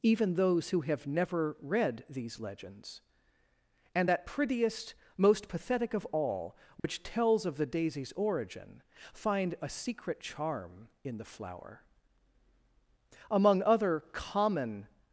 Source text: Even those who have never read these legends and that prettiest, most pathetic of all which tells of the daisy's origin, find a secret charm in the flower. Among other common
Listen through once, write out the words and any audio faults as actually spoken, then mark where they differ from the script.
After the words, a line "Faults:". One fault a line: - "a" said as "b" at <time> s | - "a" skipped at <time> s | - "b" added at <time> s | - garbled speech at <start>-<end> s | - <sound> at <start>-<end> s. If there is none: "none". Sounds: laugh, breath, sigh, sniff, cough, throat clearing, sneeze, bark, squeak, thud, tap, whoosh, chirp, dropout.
Even those who have never read these legends and that prettiest, most pathetic of all which tells of the daisy's origin, find a secret charm in the flower. Among other common
Faults:
- dropout at 6.8-6.8 s